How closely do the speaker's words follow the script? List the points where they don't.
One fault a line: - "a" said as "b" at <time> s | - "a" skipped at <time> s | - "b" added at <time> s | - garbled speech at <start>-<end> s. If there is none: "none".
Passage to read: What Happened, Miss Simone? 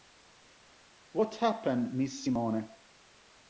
none